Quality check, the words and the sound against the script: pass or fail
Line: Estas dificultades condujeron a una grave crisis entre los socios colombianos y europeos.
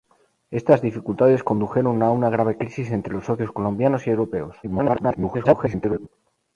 fail